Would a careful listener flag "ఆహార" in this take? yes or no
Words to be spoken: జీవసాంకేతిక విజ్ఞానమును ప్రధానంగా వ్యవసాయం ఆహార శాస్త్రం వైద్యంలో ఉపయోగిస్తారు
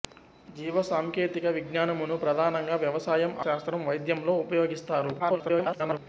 yes